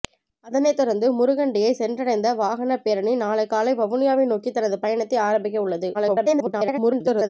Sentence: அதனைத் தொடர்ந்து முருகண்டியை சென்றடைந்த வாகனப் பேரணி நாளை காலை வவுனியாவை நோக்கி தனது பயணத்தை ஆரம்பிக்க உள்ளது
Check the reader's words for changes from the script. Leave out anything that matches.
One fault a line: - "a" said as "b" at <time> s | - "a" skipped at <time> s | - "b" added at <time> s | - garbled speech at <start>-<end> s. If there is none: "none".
- garbled speech at 5.9-7.3 s